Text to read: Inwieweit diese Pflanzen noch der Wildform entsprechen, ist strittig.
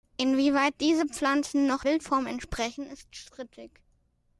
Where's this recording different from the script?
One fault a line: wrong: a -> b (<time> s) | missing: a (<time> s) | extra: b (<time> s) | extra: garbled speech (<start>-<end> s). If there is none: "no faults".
missing: der (1.8 s)